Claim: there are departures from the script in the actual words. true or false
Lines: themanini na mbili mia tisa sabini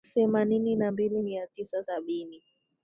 false